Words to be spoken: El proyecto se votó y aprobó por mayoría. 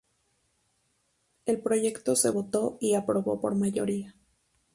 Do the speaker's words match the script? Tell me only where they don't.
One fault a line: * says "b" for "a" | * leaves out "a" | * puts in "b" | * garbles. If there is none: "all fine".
all fine